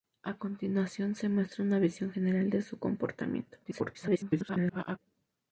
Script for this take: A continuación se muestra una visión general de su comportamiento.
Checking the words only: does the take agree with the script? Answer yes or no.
no